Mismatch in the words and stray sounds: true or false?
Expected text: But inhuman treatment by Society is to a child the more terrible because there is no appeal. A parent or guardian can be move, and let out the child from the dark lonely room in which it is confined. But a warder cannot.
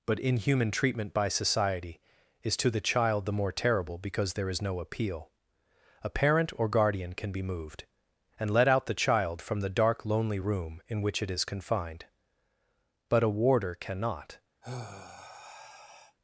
true